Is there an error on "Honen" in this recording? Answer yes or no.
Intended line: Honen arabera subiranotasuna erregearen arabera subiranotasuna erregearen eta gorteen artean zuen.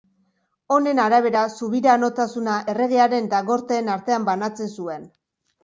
no